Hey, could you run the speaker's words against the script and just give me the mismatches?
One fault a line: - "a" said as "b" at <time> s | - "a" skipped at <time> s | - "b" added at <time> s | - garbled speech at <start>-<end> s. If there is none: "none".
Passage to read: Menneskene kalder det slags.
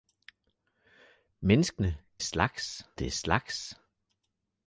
- "kalder" said as "slags" at 2.2 s